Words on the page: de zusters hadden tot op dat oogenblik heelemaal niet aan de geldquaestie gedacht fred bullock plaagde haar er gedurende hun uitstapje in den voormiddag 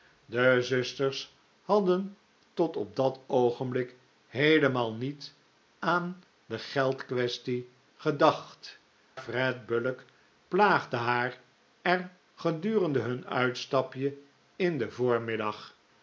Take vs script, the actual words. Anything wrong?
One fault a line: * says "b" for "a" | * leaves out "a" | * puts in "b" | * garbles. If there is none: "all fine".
all fine